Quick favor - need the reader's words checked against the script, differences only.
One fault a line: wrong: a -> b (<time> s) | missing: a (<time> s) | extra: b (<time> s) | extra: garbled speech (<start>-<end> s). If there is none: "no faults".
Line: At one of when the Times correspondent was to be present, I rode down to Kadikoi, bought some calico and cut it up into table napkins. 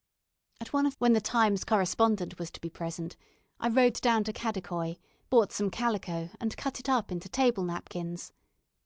no faults